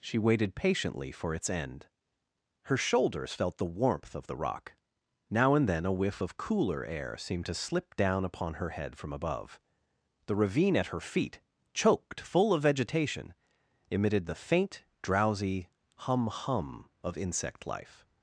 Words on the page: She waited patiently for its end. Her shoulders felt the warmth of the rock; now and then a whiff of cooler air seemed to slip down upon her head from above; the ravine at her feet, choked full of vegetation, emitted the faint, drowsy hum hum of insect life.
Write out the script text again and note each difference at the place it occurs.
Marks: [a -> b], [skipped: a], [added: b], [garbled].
She waited patiently for its end. Her shoulders felt the warmth of the rock; now and then a whiff of cooler air seemed to slip down upon her head from above; the ravine at her feet, choked full of vegetation, emitted the faint, drowsy hum hum of insect life.